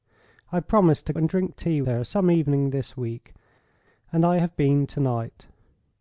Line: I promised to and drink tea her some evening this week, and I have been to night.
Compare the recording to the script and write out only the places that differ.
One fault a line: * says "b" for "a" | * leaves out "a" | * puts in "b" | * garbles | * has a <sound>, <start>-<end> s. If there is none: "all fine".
all fine